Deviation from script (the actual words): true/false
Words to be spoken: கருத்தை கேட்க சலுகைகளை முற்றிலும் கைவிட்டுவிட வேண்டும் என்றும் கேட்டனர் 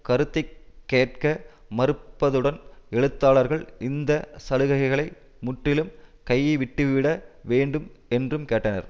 true